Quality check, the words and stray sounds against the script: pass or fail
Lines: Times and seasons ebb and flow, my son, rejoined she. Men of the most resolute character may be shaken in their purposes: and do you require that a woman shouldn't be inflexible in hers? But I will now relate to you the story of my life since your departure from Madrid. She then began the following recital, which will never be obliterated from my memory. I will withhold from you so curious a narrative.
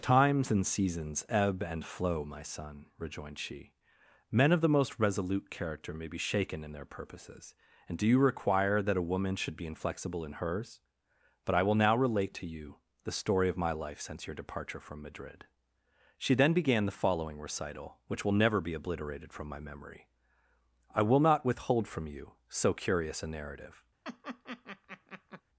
fail